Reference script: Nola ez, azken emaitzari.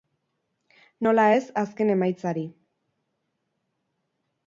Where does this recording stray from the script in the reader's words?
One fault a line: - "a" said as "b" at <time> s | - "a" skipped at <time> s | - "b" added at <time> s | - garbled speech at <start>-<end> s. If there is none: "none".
none